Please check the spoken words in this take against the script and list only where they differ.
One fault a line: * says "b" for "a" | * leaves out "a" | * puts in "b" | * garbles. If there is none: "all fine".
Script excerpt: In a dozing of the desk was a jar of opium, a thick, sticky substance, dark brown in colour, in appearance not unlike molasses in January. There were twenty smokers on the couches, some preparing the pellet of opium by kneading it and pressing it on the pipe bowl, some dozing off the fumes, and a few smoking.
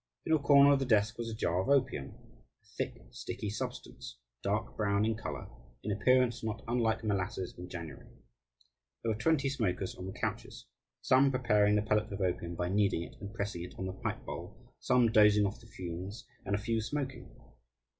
* says "corner" for "dozing"